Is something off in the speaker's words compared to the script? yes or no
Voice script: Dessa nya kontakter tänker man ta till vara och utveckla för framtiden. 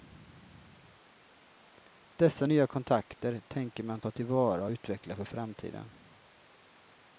no